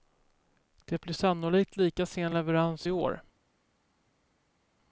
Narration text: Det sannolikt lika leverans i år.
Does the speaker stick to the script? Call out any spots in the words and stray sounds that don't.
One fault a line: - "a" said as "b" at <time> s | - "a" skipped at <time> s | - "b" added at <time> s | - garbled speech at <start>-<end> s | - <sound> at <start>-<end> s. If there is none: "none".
- "blir" added at 1.0 s
- "sen" added at 2.1 s